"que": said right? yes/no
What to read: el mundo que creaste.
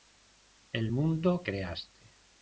no